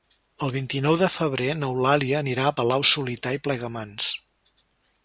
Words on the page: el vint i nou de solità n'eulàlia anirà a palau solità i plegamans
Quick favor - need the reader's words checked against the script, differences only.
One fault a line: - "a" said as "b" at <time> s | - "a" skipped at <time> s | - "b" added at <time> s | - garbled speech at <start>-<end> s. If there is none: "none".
- "solità" said as "febrer" at 1.2 s